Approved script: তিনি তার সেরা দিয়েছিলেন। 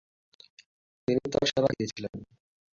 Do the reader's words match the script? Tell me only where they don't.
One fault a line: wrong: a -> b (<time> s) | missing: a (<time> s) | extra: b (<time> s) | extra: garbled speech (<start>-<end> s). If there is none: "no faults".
no faults